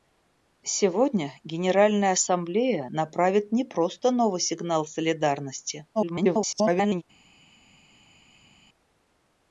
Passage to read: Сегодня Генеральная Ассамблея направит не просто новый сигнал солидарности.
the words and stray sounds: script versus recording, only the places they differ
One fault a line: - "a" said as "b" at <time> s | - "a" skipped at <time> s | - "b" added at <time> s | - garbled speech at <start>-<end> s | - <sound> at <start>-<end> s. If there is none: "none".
- garbled speech at 5.9-7.0 s